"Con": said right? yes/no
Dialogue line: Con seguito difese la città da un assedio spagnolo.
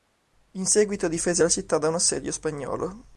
no